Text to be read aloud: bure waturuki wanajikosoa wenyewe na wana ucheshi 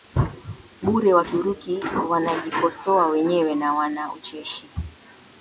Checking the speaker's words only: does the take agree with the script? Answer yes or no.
yes